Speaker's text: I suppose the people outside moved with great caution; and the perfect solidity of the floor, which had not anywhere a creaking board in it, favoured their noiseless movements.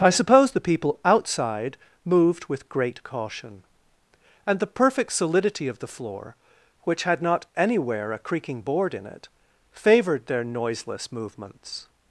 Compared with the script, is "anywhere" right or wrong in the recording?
right